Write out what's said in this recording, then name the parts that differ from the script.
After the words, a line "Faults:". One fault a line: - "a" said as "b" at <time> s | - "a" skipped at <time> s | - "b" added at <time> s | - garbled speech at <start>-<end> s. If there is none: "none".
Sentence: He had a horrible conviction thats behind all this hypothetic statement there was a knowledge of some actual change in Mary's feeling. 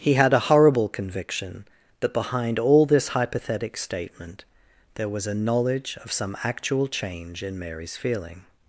He had a horrible conviction that behind all this hypothetic statement there was a knowledge of some actual change in Mary's feeling.
Faults:
- "thats" said as "that" at 2.0 s